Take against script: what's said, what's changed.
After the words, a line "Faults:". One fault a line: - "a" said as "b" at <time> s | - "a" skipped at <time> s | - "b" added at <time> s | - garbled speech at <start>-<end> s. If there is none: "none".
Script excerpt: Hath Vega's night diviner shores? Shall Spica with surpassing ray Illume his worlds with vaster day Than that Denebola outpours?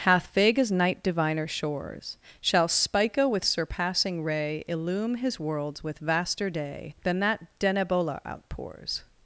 Hath Vega's night diviner shores? Shall Spica with surpassing ray Illume his worlds with vaster day Than that Denebola outpours?
Faults:
none